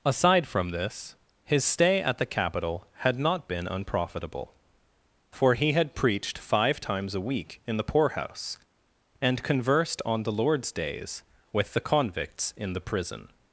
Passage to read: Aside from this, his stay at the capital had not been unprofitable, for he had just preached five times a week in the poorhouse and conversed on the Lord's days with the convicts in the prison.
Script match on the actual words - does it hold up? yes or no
no